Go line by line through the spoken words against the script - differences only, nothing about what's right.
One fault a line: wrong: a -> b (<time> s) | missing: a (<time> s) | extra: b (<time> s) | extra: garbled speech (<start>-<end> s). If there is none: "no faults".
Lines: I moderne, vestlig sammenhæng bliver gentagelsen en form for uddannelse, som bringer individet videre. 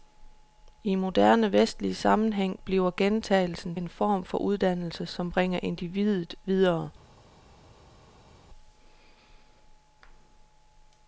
no faults